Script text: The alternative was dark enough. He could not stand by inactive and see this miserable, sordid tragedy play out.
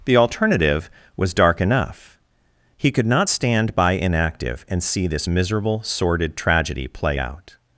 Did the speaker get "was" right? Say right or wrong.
right